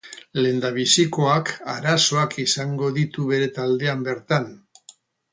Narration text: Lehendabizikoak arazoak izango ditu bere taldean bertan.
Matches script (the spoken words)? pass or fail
pass